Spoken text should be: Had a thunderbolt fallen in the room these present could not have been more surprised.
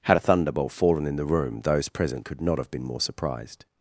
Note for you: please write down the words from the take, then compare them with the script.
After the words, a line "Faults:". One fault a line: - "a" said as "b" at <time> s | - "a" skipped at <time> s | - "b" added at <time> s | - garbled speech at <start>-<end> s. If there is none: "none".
Had a thunderbolt fallen in the room those present could not have been more surprised.
Faults:
- "these" said as "those" at 1.6 s